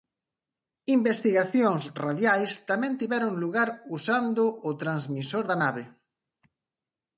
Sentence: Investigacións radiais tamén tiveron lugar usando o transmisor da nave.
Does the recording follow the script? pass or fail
pass